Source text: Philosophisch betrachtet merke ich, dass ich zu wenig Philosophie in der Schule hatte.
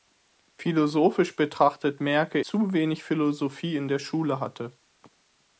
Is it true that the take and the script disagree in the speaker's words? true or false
true